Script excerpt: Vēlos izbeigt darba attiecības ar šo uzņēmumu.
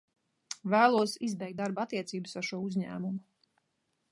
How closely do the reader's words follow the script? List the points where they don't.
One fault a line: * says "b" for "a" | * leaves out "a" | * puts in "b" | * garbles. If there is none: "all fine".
all fine